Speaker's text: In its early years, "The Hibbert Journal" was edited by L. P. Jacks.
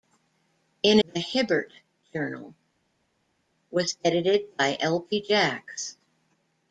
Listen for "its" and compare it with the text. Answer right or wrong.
wrong